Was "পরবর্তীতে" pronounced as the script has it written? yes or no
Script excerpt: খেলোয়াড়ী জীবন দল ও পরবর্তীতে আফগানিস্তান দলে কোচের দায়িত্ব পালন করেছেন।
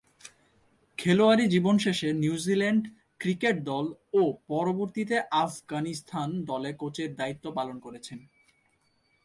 yes